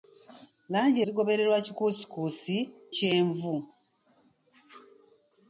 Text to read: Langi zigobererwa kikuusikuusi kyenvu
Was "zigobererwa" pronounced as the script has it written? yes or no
yes